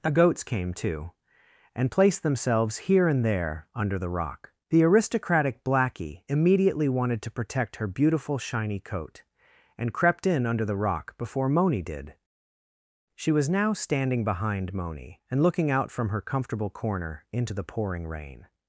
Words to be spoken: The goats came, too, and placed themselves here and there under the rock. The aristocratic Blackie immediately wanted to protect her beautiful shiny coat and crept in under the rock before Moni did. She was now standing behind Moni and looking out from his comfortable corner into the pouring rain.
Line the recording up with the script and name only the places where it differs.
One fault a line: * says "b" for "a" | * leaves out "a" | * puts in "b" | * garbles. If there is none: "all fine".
* says "her" for "his"